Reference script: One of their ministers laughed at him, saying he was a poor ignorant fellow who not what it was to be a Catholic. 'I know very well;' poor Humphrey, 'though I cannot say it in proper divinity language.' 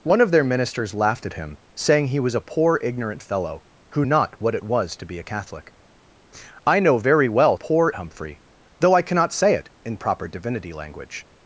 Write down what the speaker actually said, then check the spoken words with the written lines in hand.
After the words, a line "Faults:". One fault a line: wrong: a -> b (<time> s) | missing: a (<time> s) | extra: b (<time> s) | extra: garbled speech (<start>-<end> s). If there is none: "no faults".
One of their ministers laughed at him, saying he was a poor ignorant fellow who not what it was to be a Catholic. 'I know very well;' poor Humphrey, 'though I cannot say it in proper divinity language.'
Faults:
no faults